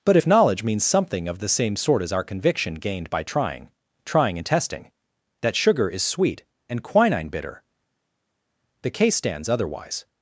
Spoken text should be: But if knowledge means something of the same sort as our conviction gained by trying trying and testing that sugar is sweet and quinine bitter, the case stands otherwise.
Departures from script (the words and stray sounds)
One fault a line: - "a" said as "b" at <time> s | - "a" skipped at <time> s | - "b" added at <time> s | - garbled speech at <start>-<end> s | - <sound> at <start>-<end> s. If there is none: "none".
none